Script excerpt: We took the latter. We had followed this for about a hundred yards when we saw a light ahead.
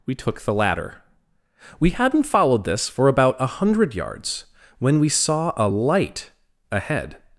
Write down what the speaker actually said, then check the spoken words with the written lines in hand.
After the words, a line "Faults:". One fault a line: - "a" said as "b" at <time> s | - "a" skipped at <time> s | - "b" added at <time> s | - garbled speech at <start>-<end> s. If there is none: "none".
We took the latter. We hadn't followed this for about a hundred yards when we saw a light ahead.
Faults:
- "had" said as "hadn't" at 1.9 s